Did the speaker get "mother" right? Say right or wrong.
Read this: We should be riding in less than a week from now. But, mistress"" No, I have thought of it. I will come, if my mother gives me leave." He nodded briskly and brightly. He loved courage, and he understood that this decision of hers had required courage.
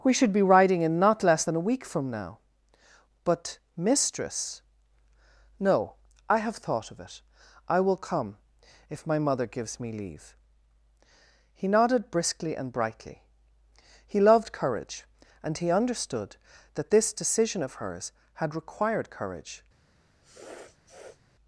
right